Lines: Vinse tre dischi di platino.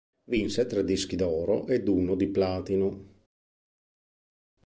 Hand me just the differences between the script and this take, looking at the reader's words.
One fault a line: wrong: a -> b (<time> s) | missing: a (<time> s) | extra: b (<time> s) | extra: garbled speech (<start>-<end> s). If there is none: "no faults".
extra: d'oro ed uno (1.1 s)